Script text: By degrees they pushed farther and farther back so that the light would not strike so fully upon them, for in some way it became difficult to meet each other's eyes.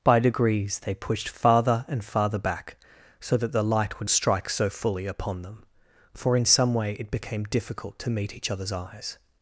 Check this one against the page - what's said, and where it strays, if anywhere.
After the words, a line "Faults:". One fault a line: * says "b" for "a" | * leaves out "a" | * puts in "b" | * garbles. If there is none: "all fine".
By degrees they pushed farther and farther back so that the light would strike so fully upon them, for in some way it became difficult to meet each other's eyes.
Faults:
* leaves out "not"